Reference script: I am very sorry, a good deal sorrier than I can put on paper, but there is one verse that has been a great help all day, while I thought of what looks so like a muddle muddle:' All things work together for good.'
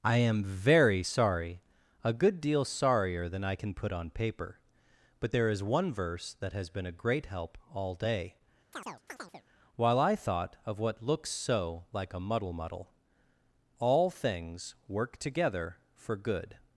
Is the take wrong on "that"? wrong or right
right